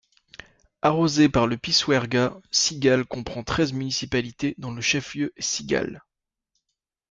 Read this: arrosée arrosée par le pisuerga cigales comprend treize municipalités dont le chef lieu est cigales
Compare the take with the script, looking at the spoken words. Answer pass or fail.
fail